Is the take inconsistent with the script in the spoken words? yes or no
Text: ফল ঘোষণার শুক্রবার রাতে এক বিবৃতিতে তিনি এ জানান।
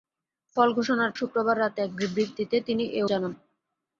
no